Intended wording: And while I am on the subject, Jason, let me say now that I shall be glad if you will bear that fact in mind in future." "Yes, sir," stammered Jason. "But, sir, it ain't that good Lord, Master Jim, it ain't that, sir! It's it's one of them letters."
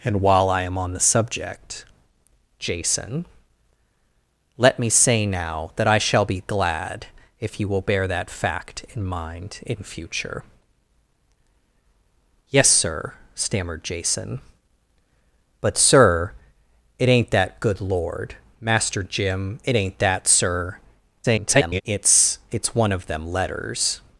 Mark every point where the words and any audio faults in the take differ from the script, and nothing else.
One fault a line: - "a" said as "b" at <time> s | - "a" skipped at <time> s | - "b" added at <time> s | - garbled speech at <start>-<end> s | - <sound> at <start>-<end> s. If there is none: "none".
- garbled speech at 21.2-21.8 s